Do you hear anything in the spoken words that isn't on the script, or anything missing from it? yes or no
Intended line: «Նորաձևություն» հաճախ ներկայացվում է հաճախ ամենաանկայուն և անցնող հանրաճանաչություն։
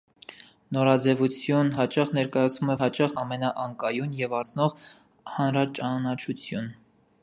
no